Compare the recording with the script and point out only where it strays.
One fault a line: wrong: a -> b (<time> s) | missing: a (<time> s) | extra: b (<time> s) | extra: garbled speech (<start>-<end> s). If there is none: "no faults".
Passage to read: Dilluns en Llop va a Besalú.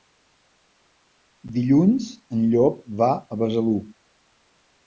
no faults